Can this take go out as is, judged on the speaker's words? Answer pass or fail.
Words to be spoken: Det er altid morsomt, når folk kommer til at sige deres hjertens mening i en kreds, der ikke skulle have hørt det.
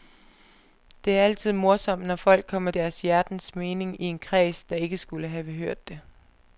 fail